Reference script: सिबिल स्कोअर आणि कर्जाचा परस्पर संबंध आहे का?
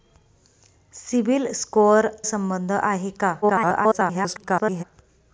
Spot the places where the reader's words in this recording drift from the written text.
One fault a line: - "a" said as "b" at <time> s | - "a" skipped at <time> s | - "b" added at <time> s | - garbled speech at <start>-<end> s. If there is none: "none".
- "आणि कर्जाचा परस्पर" skipped at 2.1 s
- garbled speech at 3.4-4.8 s